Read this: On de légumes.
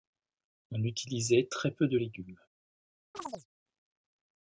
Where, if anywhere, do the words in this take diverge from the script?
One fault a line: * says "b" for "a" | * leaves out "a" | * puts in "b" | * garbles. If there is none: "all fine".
* puts in "utilisait très peu"